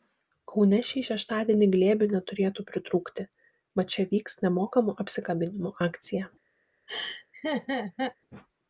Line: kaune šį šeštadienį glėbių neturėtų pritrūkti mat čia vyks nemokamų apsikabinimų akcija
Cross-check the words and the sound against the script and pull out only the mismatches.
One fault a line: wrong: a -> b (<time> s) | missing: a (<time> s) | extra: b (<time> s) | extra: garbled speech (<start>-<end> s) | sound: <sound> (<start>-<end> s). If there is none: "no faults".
sound: laugh (6.9-8.2 s)